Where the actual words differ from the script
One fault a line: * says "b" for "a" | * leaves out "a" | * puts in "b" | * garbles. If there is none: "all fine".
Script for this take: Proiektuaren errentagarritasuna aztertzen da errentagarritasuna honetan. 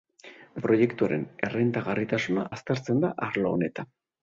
* says "arlo" for "errentagarritasuna"